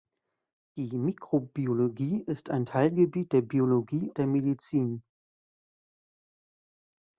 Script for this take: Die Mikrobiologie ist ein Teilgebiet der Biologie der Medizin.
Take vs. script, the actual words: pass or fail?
pass